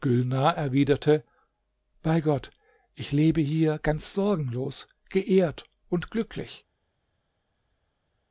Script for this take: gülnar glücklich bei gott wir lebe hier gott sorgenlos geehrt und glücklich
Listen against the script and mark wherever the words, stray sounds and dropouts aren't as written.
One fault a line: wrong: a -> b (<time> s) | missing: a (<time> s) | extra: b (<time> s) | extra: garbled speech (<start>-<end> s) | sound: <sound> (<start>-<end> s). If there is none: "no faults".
wrong: glücklich -> erwiderte (0.6 s)
wrong: wir -> ich (3.0 s)
wrong: gott -> ganz (3.8 s)